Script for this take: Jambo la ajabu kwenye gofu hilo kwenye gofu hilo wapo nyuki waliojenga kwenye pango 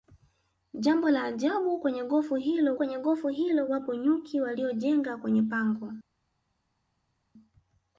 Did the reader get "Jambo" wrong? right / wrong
right